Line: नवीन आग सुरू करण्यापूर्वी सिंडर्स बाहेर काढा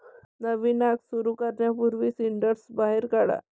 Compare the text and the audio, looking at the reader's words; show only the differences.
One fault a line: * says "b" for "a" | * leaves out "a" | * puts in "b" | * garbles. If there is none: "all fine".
all fine